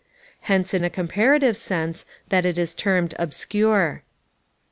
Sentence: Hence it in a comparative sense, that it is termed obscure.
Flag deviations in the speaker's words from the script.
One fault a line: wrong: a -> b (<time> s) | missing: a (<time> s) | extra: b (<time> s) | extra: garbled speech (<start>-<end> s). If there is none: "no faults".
no faults